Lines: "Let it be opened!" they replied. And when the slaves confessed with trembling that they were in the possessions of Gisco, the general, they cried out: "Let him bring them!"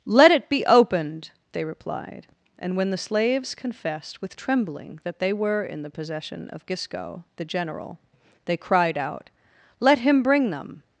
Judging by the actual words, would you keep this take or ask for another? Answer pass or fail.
fail